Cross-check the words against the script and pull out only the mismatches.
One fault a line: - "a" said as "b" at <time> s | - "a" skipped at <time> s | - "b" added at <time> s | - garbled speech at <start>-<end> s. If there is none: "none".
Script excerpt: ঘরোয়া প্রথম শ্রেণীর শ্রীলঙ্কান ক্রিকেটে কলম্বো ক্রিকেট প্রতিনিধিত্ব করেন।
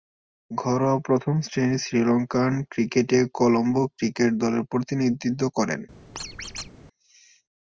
- "দলের" added at 4.3 s